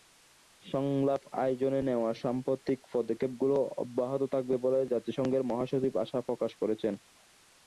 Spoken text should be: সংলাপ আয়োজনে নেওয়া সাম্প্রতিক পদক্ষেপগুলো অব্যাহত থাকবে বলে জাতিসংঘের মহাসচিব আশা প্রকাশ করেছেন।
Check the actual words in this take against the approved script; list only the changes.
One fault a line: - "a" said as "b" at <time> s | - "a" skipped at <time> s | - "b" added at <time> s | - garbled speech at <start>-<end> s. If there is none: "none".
none